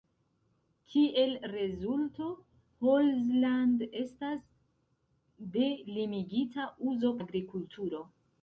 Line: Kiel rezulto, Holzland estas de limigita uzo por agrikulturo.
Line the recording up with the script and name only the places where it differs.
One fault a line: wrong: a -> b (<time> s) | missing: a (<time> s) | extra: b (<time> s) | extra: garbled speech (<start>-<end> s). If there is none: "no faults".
missing: por (7.2 s)